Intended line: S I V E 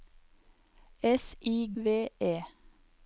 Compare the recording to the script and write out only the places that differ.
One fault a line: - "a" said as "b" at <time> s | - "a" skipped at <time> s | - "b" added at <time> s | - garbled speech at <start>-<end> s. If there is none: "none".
none